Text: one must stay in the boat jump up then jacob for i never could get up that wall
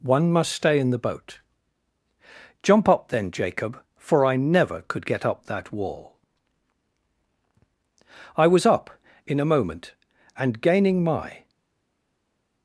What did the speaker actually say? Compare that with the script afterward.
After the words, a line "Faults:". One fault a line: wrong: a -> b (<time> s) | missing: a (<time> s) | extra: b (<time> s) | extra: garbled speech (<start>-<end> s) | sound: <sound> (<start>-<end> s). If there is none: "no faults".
one must stay in the boat jump up then jacob for i never could get up that wall i was up in a moment and gaining my
Faults:
extra: i was up in a moment and gaining my (8.3 s)